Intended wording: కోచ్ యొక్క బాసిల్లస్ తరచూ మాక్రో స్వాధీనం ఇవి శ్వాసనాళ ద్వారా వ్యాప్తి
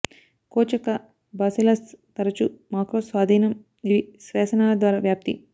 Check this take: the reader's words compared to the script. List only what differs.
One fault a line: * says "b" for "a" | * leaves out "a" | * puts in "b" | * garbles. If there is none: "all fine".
all fine